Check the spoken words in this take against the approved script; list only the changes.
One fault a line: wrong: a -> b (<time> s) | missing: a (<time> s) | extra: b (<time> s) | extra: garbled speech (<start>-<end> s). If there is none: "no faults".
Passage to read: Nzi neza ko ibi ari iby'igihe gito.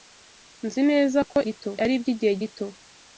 wrong: ibi -> gito (1.4 s)